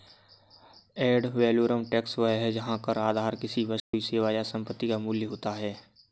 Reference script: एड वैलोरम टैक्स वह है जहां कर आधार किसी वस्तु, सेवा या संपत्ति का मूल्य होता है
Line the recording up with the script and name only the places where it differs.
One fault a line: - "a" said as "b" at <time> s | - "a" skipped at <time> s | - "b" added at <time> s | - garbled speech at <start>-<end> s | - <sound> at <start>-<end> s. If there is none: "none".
- dropout at 3.8-3.9 s